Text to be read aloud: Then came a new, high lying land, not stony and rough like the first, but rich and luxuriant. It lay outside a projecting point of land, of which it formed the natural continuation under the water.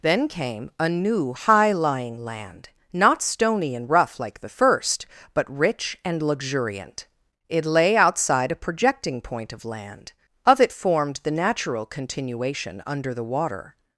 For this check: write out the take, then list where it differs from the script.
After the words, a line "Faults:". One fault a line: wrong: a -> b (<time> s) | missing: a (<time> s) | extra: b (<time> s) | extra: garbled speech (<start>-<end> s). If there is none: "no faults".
Then came a new, high lying land, not stony and rough like the first, but rich and luxuriant. It lay outside a projecting point of land, of it formed the natural continuation under the water.
Faults:
missing: which (10.6 s)